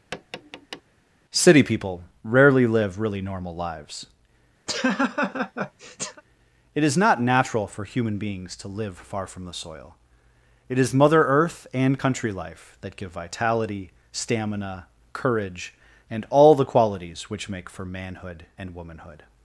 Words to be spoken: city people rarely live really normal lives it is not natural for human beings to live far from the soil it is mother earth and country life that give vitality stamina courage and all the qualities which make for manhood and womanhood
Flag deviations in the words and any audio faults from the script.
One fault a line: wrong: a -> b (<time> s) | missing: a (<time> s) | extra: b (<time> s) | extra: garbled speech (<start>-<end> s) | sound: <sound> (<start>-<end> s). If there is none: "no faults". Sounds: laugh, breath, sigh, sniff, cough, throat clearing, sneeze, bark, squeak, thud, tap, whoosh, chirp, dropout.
sound: tap (0.1-0.8 s)
sound: laugh (4.7-6.2 s)